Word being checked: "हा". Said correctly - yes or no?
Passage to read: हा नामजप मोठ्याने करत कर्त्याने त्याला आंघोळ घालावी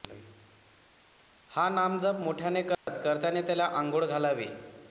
yes